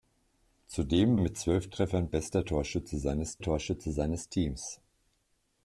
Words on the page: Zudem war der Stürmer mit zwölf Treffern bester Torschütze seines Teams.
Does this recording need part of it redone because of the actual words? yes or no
yes